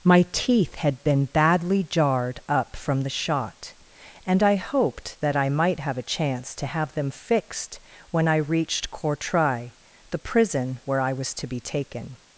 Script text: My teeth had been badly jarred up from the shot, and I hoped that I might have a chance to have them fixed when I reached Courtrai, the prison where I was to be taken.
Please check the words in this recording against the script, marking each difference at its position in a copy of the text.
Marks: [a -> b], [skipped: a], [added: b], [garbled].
My teeth had been badly jarred up from the shot, and I hoped that I might have a chance to have them fixed when I reached Courtrai, the prison where I was to be taken.